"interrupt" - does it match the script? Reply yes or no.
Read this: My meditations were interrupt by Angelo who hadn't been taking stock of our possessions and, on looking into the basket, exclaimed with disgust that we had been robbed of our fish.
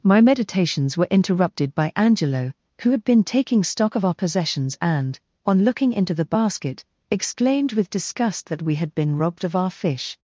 no